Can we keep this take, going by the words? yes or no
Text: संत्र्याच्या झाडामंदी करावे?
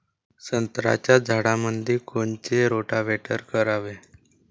no